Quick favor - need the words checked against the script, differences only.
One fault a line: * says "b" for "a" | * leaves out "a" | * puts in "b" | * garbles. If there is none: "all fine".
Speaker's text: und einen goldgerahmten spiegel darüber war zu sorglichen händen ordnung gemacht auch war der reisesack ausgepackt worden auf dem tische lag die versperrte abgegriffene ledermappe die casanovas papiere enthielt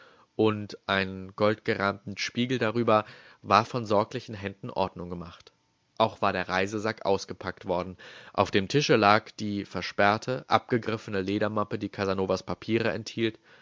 * says "von" for "zu"